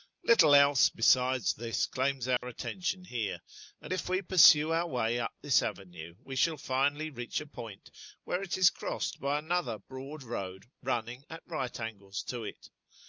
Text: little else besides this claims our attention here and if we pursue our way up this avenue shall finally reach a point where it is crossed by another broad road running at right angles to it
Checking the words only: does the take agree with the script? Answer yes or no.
no